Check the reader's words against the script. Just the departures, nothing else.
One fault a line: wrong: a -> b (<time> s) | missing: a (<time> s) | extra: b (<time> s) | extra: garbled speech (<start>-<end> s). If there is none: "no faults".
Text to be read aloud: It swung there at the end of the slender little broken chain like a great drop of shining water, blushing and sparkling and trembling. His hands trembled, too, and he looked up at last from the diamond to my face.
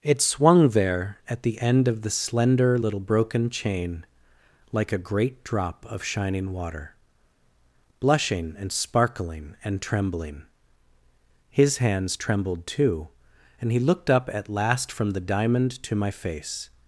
no faults